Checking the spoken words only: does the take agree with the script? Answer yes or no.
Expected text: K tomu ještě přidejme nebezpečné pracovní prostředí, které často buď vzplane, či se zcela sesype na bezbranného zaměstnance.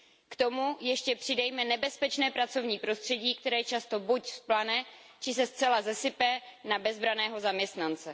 yes